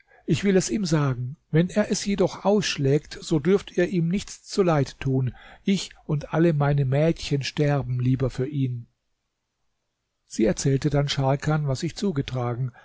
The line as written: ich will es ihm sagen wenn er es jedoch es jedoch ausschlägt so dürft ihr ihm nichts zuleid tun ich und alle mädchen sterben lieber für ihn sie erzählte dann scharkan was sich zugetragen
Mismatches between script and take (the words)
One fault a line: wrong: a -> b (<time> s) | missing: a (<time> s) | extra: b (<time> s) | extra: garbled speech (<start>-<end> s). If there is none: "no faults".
missing: es jedoch (2.5 s)
extra: meine (6.5 s)